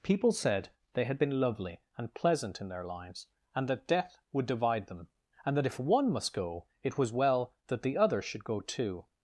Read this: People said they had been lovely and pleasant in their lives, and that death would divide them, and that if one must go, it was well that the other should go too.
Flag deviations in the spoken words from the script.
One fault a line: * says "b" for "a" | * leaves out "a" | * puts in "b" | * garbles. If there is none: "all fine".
all fine